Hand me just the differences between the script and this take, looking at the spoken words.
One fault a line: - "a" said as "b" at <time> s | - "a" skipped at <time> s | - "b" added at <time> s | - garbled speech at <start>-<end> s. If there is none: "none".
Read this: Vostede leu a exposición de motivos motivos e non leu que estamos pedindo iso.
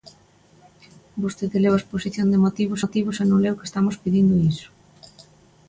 none